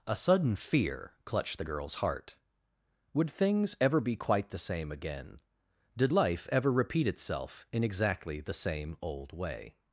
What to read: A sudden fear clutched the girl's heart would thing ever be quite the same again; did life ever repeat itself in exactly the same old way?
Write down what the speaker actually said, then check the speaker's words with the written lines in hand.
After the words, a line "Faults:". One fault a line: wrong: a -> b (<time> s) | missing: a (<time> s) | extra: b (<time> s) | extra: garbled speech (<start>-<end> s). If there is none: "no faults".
A sudden fear clutched the girl's heart would things ever be quite the same again; did life ever repeat itself in exactly the same old way?
Faults:
wrong: thing -> things (3.3 s)